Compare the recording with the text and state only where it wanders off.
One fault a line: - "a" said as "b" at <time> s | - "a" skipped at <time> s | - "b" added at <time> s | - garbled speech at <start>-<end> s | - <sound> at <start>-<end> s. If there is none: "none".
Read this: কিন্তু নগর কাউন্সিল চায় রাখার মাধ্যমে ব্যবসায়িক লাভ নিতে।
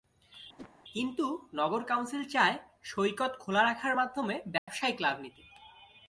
- whoosh at 0.6-0.7 s
- "সৈকত খোলা" added at 2.8 s
- dropout at 4.6-4.7 s